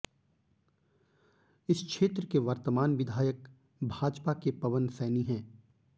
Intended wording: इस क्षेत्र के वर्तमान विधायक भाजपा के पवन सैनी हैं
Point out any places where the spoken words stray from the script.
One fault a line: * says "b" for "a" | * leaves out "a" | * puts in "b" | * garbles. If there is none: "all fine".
all fine